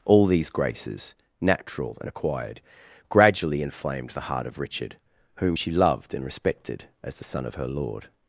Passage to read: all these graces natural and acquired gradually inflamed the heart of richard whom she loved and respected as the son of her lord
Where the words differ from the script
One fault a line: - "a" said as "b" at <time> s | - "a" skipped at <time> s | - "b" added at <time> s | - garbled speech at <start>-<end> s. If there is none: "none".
none